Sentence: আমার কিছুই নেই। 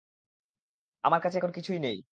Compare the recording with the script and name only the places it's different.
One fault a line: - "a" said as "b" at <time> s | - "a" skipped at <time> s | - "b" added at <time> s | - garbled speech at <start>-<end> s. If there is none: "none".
- "কাছে এখন" added at 1.2 s